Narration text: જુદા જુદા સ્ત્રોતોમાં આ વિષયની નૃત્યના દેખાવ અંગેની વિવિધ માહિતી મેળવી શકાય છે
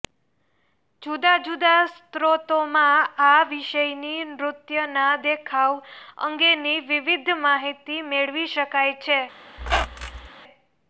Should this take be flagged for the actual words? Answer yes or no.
no